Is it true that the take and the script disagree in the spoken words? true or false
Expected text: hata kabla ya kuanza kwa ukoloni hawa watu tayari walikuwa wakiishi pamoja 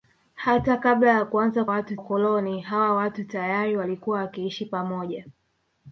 true